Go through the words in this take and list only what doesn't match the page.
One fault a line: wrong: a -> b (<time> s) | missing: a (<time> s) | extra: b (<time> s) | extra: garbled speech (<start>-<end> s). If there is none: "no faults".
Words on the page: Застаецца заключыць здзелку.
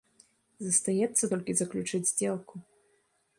extra: толькі (1.3 s)